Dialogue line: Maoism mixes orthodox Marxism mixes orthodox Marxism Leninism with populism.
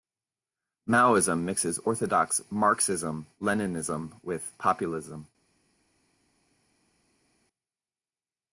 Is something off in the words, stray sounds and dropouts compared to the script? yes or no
yes